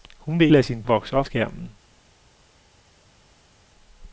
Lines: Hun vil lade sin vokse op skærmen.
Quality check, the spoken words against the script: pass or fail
pass